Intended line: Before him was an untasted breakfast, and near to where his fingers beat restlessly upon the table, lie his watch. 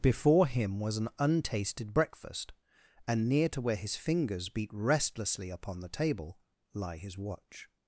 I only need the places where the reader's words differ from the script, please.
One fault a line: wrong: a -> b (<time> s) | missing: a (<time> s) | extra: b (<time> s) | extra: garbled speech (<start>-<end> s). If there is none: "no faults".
no faults